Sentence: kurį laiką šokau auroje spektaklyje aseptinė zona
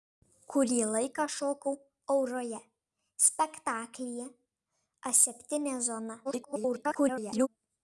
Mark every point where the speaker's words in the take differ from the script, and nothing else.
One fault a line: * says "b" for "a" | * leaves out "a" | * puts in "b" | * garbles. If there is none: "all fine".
* garbles